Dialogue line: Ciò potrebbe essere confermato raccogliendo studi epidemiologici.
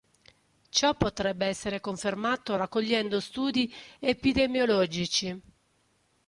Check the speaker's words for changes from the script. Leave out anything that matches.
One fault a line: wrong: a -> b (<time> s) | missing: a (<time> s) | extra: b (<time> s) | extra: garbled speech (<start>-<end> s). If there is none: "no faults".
no faults